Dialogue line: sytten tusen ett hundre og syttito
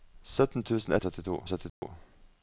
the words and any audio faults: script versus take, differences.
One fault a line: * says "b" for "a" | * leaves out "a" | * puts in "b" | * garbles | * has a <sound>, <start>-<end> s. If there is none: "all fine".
* says "syttito" for "hundre"
* has a dropout, 1.7-1.8 s